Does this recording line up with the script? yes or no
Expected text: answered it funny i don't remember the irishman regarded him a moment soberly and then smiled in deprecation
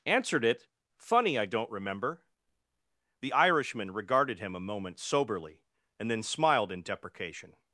yes